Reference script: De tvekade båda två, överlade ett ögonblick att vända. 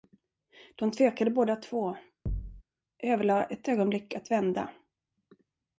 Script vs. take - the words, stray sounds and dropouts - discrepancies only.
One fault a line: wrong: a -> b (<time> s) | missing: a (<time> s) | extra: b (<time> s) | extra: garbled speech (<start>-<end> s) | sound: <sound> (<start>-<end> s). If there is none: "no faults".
sound: thud (2.3-2.6 s)